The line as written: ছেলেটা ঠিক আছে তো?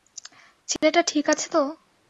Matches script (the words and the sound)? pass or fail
fail